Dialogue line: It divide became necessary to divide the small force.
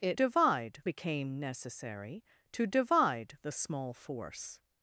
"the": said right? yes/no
yes